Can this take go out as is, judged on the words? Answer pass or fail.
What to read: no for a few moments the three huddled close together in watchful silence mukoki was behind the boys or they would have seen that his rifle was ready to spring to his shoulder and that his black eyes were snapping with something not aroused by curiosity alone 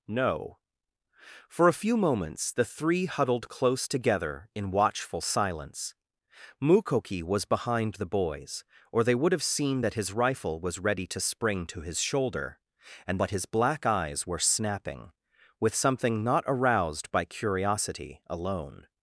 pass